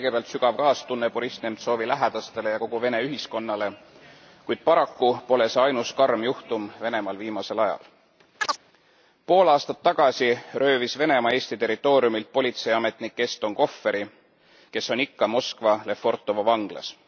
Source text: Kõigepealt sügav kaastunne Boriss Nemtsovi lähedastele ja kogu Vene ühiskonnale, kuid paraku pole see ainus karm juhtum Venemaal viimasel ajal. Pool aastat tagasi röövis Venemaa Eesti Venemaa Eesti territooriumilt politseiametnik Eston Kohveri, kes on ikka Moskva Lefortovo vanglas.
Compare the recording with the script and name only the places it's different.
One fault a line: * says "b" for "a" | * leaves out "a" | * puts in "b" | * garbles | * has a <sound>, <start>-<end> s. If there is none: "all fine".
* has a chirp, 8.4-8.6 s
* leaves out "Venemaa Eesti"